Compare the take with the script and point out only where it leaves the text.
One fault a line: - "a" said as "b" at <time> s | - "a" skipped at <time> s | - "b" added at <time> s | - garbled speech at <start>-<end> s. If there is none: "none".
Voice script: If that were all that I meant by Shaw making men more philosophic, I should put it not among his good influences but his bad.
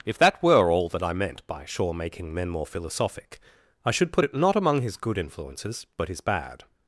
none